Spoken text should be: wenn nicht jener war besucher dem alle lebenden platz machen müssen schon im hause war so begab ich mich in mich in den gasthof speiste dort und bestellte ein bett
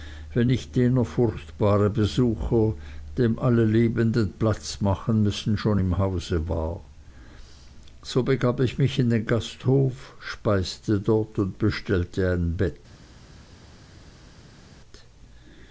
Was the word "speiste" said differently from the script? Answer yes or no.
no